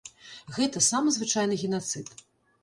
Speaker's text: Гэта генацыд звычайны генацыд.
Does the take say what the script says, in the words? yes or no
no